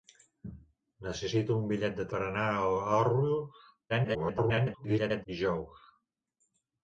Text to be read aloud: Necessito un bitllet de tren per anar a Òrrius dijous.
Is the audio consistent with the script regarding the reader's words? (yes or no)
no